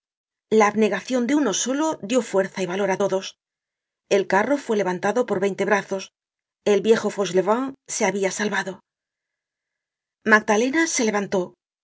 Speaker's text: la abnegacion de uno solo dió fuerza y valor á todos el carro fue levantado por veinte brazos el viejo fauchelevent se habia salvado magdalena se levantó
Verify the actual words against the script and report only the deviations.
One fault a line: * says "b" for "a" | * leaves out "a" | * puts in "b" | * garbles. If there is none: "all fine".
all fine